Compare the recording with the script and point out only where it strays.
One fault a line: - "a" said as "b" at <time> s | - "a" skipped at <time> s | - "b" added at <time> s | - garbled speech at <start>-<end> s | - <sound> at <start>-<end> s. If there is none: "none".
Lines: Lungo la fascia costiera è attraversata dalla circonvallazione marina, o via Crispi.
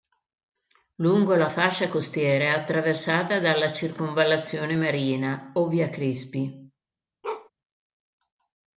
- bark at 7.2-7.5 s